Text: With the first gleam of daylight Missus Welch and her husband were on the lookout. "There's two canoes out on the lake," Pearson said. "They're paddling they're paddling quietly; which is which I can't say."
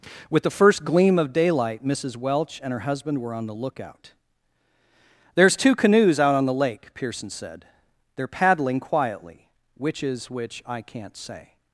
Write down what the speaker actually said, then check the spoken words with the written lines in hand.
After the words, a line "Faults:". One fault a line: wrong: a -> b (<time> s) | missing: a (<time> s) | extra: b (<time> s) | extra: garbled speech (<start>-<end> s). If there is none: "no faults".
With the first gleam of daylight Missus Welch and her husband were on the lookout. "There's two canoes out on the lake," Pearson said. "They're paddling quietly; which is which I can't say."
Faults:
missing: they're paddling (8.8 s)